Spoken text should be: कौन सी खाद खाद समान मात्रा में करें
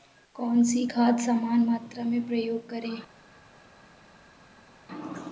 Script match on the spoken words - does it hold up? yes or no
no